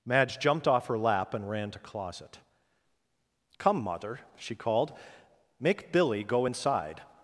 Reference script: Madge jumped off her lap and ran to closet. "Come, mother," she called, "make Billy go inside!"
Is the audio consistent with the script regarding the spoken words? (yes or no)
yes